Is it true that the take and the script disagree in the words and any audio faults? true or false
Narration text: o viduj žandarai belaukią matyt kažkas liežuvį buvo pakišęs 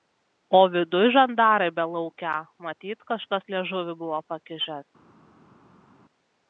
false